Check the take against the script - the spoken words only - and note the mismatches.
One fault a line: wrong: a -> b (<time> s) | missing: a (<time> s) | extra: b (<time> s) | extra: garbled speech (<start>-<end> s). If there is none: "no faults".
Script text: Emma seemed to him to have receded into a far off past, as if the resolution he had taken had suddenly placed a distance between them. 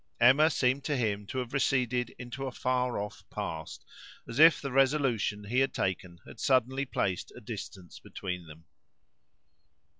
no faults